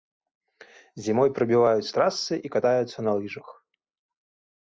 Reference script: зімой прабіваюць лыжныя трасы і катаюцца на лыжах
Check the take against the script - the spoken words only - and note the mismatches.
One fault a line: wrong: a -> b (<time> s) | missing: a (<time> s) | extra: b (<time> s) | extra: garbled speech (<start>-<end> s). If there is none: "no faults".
missing: лыжныя (1.9 s)